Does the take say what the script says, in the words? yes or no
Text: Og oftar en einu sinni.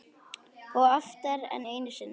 yes